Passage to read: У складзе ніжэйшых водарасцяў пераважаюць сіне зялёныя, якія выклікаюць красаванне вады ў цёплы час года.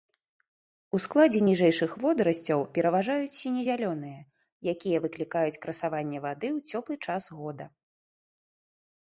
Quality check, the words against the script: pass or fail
pass